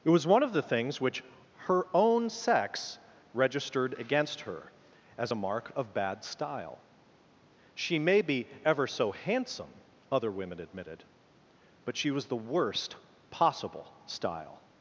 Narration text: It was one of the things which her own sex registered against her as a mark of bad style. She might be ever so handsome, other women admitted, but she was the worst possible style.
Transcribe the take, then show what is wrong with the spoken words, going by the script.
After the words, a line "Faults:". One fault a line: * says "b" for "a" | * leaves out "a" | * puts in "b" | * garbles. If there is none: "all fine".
It was one of the things which her own sex registered against her as a mark of bad style. She may be ever so handsome, other women admitted, but she was the worst possible style.
Faults:
* says "may" for "might"